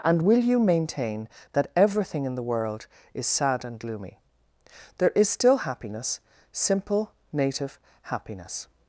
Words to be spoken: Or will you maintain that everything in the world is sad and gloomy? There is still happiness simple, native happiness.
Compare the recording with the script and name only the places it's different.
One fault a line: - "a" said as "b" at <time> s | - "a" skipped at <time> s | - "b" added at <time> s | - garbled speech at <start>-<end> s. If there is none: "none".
- "Or" said as "And" at 0.0 s